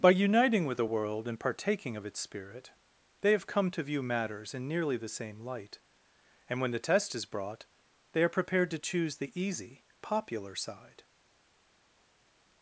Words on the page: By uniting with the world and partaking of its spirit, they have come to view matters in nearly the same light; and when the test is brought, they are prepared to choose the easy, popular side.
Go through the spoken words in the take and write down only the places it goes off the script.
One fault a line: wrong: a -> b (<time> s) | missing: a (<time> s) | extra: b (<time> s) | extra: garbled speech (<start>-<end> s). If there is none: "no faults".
no faults